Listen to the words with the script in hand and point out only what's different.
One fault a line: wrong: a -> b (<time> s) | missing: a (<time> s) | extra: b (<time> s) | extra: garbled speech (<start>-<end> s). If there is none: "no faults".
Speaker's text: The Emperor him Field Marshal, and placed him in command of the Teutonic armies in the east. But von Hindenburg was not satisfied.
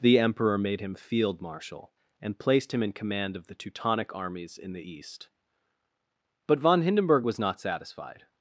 extra: made (0.6 s)